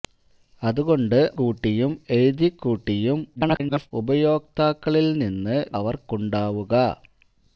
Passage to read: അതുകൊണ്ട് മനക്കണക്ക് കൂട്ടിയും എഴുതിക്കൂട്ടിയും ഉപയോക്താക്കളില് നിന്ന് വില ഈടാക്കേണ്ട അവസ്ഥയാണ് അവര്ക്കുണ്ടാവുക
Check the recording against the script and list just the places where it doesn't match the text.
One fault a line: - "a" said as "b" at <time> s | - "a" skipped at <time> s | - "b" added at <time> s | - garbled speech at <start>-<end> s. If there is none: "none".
- "മനക്കണക്ക്" skipped at 1.2 s
- garbled speech at 3.4-3.9 s
- "വില ഈടാക്കേണ്ട അവസ്ഥയാണ്" skipped at 5.6 s